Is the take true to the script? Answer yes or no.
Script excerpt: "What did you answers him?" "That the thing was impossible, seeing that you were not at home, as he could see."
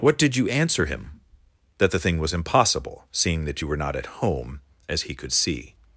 no